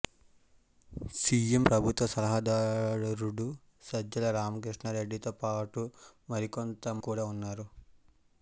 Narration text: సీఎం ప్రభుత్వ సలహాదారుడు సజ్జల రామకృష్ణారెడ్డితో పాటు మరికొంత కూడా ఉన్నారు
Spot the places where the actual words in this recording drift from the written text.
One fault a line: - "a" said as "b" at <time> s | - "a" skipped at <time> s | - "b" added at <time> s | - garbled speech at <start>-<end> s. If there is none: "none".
none